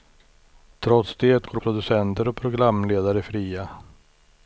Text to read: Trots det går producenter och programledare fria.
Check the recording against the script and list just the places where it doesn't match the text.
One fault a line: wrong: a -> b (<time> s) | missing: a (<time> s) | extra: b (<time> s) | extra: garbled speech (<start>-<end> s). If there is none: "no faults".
no faults